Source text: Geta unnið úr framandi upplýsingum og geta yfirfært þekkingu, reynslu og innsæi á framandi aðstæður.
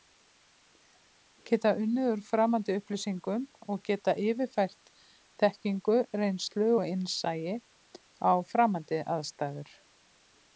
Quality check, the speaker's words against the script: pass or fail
pass